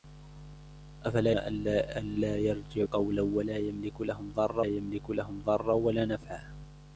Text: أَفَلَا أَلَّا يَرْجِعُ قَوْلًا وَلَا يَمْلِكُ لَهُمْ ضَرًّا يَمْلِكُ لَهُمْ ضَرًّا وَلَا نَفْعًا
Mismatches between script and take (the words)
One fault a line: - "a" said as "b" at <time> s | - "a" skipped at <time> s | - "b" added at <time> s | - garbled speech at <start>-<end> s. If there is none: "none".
none